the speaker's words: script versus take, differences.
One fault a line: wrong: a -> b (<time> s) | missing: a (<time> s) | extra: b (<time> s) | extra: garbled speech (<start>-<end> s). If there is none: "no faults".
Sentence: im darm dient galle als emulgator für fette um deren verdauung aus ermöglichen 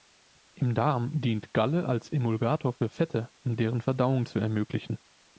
wrong: aus -> zu (4.2 s)